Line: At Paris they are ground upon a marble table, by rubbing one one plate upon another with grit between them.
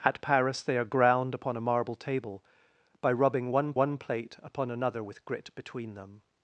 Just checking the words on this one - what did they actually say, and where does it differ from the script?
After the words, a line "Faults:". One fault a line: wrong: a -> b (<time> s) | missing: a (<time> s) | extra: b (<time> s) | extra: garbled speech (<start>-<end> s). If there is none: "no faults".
At Paris they are ground upon a marble table, by rubbing one one plate upon another with grit between them.
Faults:
no faults